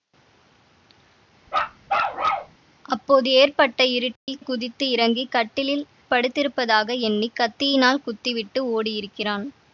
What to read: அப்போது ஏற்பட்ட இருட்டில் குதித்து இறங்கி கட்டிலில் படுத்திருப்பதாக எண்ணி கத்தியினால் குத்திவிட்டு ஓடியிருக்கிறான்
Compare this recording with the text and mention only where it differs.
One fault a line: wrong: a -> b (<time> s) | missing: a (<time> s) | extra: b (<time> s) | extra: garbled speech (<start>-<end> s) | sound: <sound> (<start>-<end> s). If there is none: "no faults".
sound: bark (1.5-2.6 s)
sound: dropout (4.2-4.3 s)